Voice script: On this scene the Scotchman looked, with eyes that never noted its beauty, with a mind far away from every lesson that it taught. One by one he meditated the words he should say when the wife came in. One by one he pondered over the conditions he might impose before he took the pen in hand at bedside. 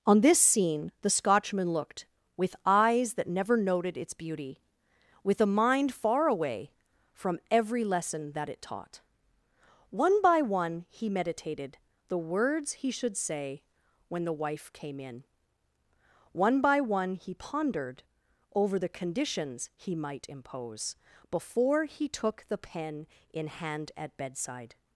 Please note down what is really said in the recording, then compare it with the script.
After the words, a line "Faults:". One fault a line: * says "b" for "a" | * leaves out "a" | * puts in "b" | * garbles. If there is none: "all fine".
On this scene the Scotchman looked, with eyes that never noted its beauty, with a mind far away from every lesson that it taught. One by one he meditated the words he should say when the wife came in. One by one he pondered over the conditions he might impose before he took the pen in hand at bedside.
Faults:
all fine